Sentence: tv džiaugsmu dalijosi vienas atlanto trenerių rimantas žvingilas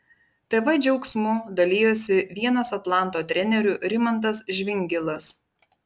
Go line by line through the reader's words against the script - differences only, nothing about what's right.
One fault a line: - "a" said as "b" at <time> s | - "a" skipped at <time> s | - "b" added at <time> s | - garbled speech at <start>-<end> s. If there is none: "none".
none